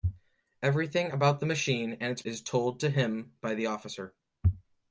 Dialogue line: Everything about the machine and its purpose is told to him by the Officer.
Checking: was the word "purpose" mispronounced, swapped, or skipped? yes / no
yes